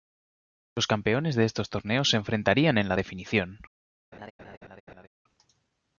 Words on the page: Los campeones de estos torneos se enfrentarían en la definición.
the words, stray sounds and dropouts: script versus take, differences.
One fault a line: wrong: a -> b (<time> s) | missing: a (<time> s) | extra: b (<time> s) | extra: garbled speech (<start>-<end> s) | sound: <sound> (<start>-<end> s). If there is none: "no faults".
sound: laugh (4.1-5.1 s)